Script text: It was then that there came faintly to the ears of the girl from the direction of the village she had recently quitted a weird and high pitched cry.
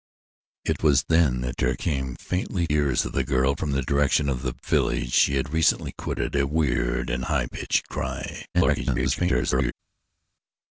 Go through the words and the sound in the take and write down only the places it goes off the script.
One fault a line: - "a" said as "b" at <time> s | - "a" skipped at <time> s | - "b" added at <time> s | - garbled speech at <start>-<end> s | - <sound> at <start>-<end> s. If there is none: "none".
- "to the" skipped at 2.6 s
- garbled speech at 8.5-9.7 s